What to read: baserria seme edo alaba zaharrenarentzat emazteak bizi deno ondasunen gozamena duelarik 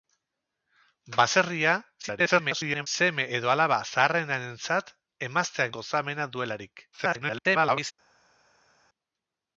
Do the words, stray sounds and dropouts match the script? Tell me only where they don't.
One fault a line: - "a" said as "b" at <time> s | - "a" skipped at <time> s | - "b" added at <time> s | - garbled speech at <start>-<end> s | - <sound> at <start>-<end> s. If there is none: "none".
- garbled speech at 2.0-2.9 s
- "bizi deno ondasunen" skipped at 5.7 s
- garbled speech at 6.9-7.9 s